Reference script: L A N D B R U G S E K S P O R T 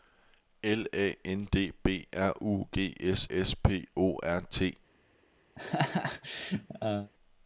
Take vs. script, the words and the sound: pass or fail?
fail